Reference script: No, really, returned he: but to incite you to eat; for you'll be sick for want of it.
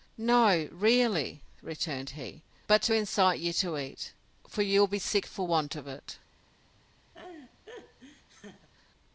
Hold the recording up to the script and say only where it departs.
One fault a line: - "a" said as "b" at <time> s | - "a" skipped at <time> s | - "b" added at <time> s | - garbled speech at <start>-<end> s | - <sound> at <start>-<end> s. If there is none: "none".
- laugh at 7.1-8.7 s